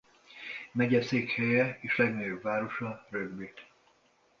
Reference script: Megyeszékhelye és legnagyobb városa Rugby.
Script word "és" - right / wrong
right